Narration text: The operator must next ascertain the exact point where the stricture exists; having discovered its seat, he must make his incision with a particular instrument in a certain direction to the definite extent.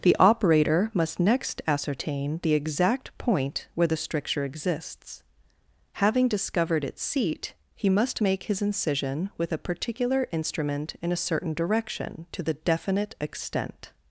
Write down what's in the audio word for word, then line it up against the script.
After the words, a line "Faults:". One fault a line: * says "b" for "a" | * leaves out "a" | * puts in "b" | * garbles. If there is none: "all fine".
The operator must next ascertain the exact point where the stricture exists; having discovered its seat, he must make his incision with a particular instrument in a certain direction to the definite extent.
Faults:
all fine